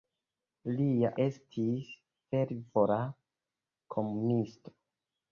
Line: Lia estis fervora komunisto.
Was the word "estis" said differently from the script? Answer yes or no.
no